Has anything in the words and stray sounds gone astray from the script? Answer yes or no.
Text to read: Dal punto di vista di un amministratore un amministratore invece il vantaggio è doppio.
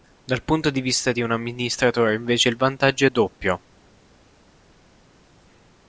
yes